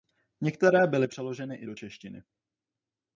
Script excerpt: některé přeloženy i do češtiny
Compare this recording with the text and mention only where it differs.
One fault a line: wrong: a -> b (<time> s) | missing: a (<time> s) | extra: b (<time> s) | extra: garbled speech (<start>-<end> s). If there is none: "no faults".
extra: byly (0.9 s)